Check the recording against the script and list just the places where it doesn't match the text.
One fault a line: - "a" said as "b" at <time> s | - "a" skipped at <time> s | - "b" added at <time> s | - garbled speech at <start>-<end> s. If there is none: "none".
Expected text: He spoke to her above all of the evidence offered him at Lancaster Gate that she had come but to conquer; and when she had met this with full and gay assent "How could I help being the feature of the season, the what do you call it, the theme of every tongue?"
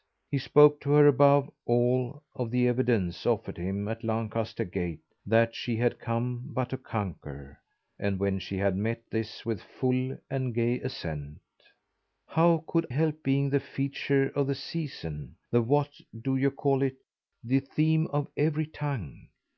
- "I" skipped at 12.9 s